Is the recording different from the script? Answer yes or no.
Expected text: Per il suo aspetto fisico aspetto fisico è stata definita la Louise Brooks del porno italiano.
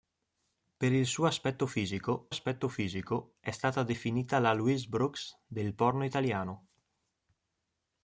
no